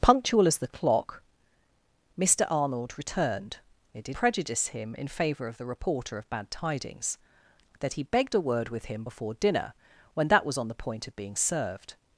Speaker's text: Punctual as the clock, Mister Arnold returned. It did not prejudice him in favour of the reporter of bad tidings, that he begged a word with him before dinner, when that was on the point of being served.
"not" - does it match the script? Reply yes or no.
no